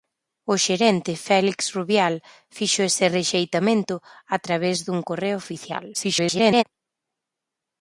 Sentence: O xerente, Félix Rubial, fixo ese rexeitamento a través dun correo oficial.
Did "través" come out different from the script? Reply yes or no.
no